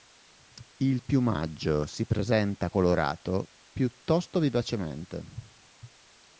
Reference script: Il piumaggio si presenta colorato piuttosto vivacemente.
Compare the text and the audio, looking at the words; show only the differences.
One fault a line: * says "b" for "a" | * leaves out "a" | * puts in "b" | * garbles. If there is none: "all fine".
all fine